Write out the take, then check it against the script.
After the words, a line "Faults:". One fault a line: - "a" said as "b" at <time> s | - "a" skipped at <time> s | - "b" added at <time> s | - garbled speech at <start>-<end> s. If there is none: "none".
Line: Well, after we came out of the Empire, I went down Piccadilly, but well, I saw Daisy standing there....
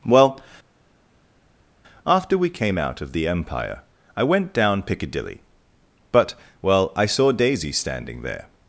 Well, after we came out of the Empire, I went down Piccadilly, but well, I saw Daisy standing there....
Faults:
none